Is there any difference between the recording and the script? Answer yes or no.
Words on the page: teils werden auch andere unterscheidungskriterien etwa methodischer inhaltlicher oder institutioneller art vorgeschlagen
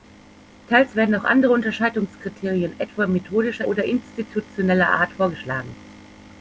yes